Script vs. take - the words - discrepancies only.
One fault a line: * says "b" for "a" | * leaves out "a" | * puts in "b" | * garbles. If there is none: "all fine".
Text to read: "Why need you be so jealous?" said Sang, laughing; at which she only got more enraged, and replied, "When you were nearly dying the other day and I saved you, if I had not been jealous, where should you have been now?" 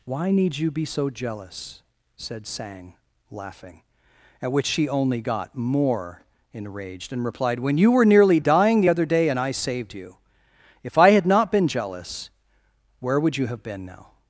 * says "would" for "should"